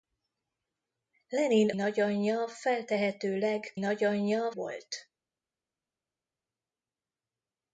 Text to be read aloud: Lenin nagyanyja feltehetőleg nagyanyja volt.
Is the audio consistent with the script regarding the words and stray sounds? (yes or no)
yes